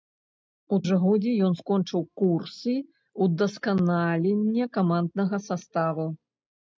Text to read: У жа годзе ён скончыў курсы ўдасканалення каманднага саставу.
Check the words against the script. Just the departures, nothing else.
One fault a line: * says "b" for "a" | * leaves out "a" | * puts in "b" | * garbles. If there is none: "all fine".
all fine